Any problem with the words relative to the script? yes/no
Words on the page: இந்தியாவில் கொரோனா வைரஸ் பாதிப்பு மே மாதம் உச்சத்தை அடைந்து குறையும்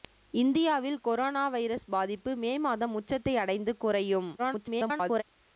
yes